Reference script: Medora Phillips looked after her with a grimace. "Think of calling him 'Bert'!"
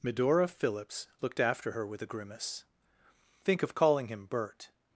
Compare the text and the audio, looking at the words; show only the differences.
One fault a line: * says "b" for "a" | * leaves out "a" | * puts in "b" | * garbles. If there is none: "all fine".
all fine